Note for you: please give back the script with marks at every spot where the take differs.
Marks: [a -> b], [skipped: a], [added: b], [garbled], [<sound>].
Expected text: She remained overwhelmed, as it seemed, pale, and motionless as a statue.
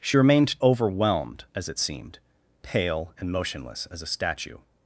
She remained overwhelmed, as it seemed, pale, and motionless as a statue.